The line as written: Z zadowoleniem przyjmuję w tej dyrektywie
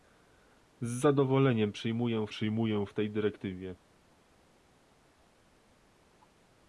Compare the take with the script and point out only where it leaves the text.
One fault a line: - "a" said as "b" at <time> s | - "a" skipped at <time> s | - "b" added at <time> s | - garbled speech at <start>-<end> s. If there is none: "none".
- "przyjmuję" added at 2.3 s